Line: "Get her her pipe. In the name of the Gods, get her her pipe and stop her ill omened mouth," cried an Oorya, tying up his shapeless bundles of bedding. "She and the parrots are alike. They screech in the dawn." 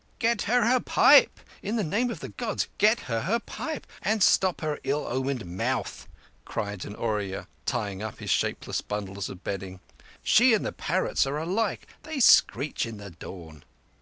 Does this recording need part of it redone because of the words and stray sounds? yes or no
no